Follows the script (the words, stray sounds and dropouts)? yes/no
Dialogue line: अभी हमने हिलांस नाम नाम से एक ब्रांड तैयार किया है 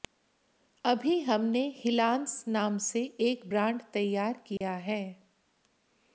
no